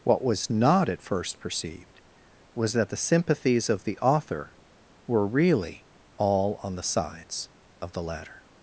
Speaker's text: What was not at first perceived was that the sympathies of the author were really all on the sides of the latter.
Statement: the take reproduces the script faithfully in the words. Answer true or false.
true